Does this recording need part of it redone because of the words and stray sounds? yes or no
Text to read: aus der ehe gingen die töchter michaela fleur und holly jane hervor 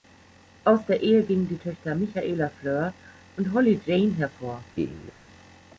yes